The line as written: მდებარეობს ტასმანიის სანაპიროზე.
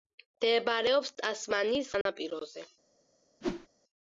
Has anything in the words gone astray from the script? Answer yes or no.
no